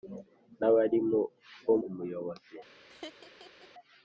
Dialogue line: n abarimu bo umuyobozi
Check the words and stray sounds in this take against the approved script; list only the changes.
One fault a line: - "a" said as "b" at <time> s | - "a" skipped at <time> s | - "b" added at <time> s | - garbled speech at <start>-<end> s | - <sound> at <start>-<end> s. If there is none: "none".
- laugh at 2.9-3.7 s